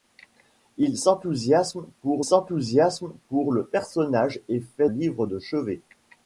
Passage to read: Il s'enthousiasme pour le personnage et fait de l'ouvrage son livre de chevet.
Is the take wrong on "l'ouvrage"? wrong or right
wrong